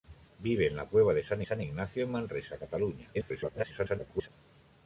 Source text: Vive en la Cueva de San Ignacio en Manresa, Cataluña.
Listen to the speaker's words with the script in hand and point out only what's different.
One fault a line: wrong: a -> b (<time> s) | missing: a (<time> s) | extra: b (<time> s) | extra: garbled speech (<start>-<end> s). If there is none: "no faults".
extra: San (1.4 s)
extra: garbled speech (3.1-4.3 s)